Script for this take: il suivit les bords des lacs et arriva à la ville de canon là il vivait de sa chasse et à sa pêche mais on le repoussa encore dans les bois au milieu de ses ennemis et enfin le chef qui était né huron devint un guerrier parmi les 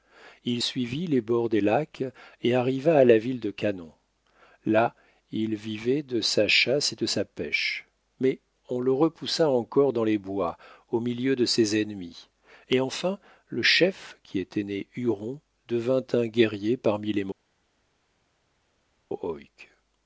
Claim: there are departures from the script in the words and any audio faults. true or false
true